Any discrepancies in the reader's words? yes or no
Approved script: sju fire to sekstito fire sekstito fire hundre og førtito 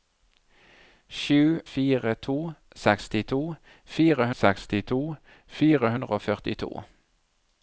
no